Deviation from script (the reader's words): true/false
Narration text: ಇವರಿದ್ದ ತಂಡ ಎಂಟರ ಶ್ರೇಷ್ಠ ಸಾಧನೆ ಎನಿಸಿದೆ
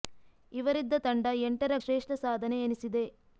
false